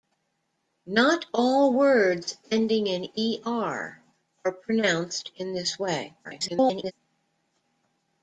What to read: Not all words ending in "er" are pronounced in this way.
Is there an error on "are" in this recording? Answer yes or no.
no